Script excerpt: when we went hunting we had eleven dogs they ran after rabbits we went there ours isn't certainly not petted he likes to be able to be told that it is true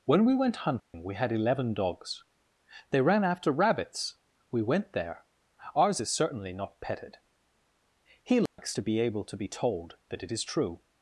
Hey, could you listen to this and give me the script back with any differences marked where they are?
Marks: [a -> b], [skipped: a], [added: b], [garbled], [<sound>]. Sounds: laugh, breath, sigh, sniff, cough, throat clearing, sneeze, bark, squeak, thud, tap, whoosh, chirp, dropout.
when we went hunting [dropout] we had eleven dogs they ran after rabbits we went there ours [isn't -> is] certainly not petted he likes [dropout] to be able to be told that it is true